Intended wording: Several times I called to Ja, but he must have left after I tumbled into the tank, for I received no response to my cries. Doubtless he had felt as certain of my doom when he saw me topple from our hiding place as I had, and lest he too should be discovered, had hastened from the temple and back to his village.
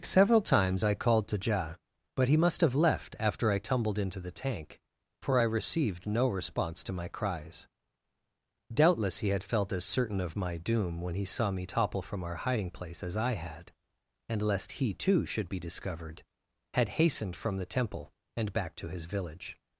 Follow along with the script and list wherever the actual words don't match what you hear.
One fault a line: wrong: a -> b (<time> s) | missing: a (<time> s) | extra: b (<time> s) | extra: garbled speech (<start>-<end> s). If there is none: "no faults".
no faults